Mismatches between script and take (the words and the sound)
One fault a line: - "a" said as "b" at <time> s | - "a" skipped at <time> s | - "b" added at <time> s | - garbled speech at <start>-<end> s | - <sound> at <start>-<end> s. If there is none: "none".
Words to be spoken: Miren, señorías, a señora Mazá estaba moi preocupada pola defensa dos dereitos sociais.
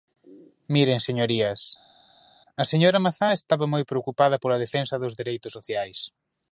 none